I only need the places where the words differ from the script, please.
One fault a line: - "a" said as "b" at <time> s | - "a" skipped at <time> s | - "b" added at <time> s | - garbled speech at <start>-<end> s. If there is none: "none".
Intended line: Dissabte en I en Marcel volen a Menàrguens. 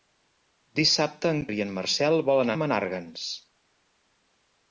none